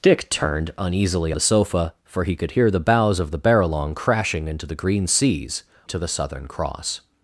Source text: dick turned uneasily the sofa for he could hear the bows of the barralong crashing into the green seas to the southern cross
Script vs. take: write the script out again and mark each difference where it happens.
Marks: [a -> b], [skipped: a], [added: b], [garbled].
dick turned uneasily the sofa for he could hear the bows of the barralong crashing into the green seas to the southern cross